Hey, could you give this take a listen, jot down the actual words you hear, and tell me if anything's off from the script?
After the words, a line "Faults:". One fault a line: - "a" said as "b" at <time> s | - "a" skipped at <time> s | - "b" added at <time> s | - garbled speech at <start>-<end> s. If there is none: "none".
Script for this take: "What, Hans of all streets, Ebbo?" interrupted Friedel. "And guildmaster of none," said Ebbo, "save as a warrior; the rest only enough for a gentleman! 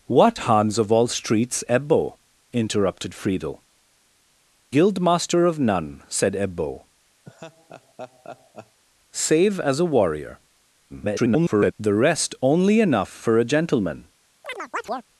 "What, Hans of all streets, Ebbo?" interrupted Friedel. "Guildmaster of none," said Ebbo, "save as a warrior; [garbled] the rest only enough for a gentleman!
Faults:
- "And" skipped at 3.6 s
- garbled speech at 10.9-11.7 s